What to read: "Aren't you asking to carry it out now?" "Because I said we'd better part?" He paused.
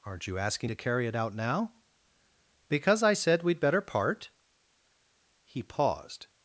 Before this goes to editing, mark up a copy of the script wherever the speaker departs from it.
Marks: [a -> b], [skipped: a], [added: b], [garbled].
"Aren't you asking to carry it out now?" "Because I said we'd better part?" He paused.